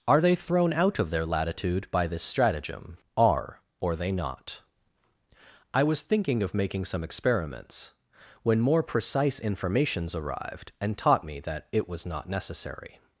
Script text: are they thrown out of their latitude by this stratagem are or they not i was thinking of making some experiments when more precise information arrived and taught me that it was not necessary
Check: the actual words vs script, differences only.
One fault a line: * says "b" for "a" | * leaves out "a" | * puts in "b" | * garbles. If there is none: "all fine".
* says "informations" for "information"